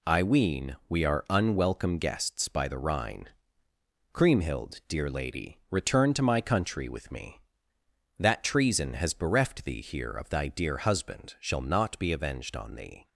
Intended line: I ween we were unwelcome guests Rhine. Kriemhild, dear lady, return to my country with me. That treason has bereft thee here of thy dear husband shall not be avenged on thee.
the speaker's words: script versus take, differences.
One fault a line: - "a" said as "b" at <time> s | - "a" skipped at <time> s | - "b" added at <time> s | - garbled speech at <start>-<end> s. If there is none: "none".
- "were" said as "are" at 1.1 s
- "by the" added at 2.5 s